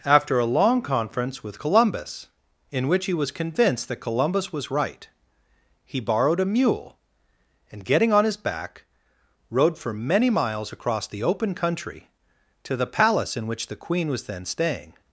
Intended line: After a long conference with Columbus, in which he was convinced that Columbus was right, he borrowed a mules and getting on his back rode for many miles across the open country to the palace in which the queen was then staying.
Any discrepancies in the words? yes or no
yes